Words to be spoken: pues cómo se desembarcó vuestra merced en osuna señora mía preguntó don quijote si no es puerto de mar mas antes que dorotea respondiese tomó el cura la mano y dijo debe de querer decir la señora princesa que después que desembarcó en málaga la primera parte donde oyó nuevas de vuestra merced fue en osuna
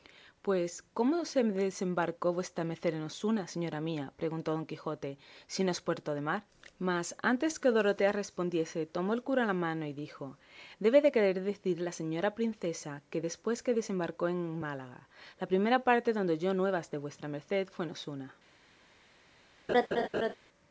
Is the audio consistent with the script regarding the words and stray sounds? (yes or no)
no